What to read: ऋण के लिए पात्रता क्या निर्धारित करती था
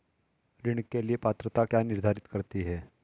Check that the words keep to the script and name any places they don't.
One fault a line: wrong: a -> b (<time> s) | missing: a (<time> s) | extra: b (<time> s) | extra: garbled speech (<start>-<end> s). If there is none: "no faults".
wrong: था -> है (2.6 s)